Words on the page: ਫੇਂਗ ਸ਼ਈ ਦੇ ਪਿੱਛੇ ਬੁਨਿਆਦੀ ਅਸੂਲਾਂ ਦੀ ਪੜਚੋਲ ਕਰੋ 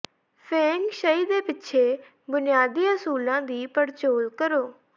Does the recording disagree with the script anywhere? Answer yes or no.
no